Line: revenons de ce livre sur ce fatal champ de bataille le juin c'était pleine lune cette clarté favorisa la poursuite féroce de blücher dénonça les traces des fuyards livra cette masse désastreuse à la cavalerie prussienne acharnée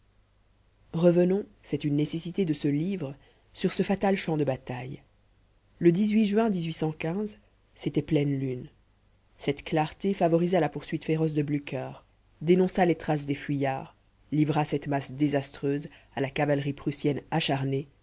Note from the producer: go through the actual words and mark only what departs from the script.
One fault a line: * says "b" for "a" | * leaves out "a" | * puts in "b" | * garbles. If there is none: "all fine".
* puts in "c'est une nécessité"